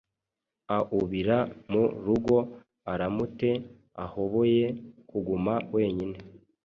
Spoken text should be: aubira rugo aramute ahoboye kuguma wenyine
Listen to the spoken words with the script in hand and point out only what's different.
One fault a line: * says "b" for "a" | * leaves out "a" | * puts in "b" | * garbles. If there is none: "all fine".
* puts in "mu"